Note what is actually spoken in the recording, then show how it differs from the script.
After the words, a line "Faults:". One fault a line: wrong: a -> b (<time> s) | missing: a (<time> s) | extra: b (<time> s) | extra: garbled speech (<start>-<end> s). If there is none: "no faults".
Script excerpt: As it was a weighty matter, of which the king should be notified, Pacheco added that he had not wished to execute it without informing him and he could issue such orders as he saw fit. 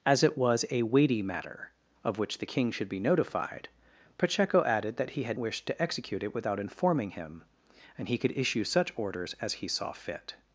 As it was a weighty matter, of which the king should be notified, Pacheco added that he had wished to execute it without informing him and he could issue such orders as he saw fit.
Faults:
missing: not (5.4 s)